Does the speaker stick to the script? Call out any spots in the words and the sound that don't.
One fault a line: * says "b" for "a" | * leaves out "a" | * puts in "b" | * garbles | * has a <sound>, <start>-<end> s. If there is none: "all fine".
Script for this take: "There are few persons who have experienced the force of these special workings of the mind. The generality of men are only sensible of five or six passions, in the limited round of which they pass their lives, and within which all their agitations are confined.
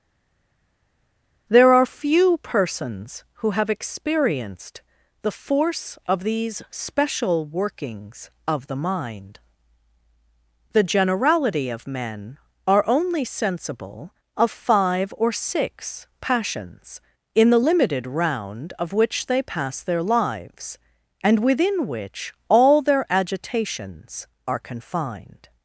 all fine